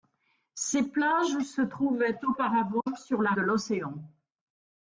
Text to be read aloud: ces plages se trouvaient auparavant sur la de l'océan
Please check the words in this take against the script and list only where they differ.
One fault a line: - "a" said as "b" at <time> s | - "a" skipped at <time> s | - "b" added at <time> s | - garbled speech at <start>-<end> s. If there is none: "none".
none